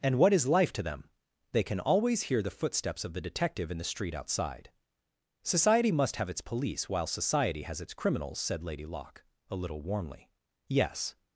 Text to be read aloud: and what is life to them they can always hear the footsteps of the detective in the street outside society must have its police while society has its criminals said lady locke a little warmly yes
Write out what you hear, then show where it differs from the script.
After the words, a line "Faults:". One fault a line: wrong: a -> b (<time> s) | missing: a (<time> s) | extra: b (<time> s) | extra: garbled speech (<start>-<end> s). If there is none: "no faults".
and what is life to them they can always hear the footsteps of the detective in the street outside society must have its police while society has its criminals said lady locke a little warmly yes
Faults:
no faults